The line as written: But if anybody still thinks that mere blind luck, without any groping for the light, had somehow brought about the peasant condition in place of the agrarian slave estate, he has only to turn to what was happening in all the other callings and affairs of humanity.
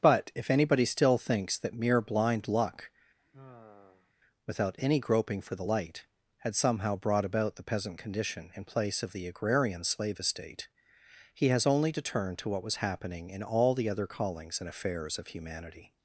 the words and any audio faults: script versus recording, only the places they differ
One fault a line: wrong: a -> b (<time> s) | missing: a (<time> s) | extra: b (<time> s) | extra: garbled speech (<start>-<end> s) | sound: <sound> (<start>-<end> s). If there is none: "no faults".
sound: sigh (3.2-4.1 s)